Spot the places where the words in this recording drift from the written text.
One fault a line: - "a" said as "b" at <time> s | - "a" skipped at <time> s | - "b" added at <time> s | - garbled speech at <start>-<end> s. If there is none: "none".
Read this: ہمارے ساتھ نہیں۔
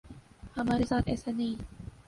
- "ایسا" added at 1.1 s